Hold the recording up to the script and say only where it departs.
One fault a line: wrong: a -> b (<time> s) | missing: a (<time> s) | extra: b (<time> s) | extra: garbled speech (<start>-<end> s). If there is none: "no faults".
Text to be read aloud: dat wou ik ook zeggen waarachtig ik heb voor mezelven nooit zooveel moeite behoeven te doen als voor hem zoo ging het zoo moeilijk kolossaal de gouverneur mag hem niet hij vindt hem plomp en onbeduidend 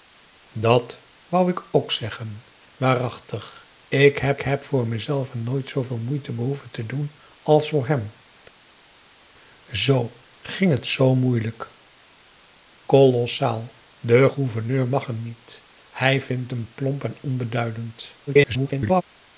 extra: heb (4.4 s)
extra: garbled speech (18.3-19.0 s)